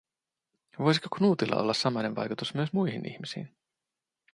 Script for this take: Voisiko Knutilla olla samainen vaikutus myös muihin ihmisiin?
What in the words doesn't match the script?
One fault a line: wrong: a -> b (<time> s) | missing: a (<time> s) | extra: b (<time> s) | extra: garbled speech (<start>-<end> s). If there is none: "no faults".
no faults